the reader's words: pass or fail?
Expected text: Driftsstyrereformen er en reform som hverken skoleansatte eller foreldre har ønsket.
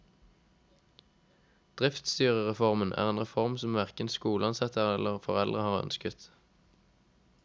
pass